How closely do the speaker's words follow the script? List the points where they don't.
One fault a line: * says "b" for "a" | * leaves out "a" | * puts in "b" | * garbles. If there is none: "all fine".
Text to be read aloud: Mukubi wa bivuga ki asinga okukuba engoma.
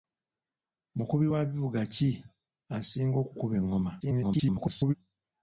* garbles